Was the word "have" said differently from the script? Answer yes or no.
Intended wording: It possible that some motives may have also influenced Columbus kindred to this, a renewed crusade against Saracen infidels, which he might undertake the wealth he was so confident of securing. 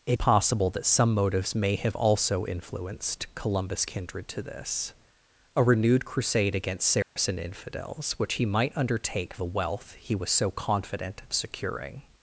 no